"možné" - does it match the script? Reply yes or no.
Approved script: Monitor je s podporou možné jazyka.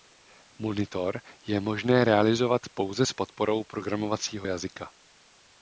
no